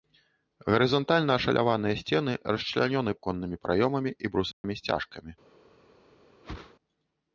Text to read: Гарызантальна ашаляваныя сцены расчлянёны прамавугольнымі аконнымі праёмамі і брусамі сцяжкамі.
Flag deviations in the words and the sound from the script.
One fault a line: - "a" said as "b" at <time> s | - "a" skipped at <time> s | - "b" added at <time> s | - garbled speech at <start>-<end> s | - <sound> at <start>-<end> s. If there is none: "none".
- "прамавугольнымі" skipped at 3.1 s
- dropout at 4.5-4.6 s
- whoosh at 6.4-6.7 s